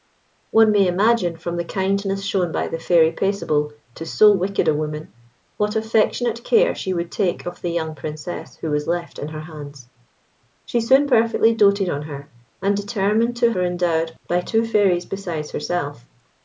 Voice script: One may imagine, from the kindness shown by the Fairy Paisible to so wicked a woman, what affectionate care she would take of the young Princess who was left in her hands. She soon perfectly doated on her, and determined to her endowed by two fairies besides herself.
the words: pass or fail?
pass